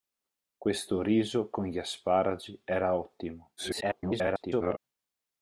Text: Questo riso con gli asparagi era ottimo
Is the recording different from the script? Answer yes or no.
yes